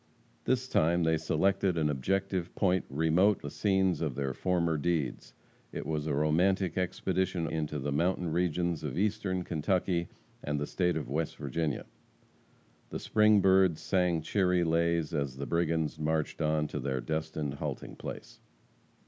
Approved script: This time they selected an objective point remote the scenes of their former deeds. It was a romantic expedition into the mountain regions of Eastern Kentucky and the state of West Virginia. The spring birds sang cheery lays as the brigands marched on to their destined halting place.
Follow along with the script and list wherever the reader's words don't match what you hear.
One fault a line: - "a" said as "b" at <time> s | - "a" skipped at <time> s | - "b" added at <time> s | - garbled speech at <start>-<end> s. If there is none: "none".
none